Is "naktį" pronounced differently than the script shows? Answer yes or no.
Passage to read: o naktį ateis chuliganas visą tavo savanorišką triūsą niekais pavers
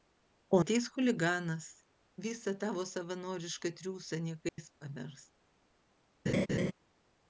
yes